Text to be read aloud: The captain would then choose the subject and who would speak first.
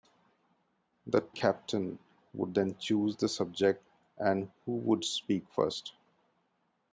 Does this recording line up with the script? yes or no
yes